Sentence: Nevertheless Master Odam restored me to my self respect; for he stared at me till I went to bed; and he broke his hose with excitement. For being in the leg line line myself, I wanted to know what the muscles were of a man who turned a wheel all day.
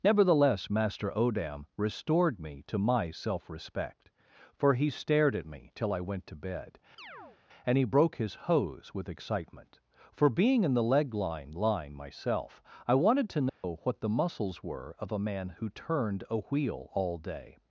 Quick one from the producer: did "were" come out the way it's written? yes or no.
yes